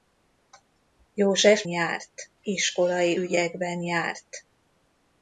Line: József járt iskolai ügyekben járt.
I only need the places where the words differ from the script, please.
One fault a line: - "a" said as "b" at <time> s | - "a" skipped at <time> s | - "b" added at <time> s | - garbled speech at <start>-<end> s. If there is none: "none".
none